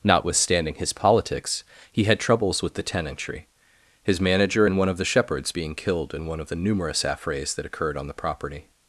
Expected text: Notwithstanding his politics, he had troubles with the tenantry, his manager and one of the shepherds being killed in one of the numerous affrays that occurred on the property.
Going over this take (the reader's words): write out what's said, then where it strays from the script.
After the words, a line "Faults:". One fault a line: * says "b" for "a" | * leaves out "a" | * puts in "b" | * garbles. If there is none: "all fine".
Notwithstanding his politics, he had troubles with the tenantry, his manager and one of the shepherds being killed in one of the numerous affrays that occurred on the property.
Faults:
all fine